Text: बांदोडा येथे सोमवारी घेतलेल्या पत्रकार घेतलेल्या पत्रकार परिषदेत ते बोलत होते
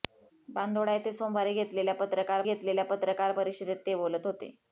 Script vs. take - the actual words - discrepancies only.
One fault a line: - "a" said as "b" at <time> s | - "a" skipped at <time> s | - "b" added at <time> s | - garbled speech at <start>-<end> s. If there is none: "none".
none